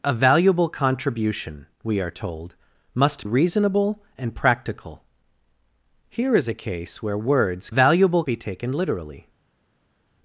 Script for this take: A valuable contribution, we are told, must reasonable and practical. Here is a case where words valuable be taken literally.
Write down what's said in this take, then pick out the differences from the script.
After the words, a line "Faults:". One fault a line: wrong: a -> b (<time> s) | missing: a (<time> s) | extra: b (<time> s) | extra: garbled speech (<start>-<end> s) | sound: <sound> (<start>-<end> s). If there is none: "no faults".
A valuable contribution, we are told, must reasonable and practical. Here is a case where words valuable be taken literally.
Faults:
no faults